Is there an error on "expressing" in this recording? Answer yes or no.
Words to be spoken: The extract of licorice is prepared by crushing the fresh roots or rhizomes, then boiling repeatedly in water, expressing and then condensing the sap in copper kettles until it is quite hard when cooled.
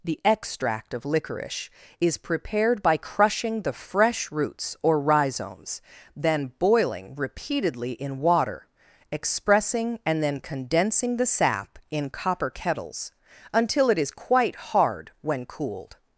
no